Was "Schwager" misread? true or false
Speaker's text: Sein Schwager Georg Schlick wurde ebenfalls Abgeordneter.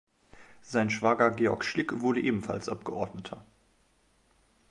false